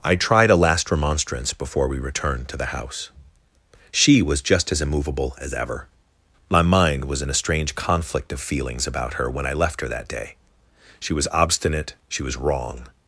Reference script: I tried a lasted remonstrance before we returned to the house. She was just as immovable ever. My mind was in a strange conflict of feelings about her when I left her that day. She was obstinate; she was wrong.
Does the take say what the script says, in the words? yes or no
no